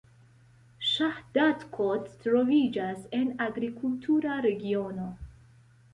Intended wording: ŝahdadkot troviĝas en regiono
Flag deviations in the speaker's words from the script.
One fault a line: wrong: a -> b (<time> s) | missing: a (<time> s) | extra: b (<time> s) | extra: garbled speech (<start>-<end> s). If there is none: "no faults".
extra: agrikultura (3.5 s)